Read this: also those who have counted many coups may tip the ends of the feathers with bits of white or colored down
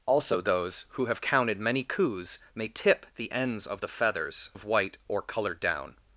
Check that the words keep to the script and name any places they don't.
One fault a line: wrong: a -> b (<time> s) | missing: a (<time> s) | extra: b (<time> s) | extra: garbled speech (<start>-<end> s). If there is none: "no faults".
missing: with bits (4.5 s)